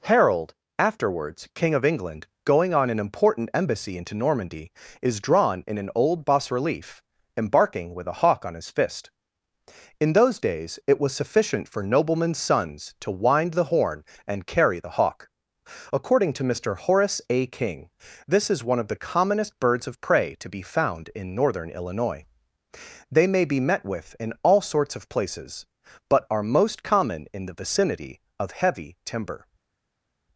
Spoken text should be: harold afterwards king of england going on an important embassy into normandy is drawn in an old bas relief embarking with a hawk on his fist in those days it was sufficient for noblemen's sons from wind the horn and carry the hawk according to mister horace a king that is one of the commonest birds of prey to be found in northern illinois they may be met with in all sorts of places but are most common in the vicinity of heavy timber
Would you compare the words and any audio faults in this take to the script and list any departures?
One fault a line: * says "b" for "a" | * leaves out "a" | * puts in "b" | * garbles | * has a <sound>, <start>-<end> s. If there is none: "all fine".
* says "to" for "from"
* says "this" for "that"